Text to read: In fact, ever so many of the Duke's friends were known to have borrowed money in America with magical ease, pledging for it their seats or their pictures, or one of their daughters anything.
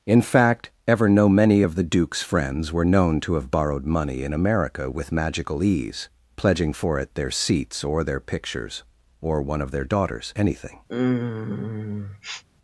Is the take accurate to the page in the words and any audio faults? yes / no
no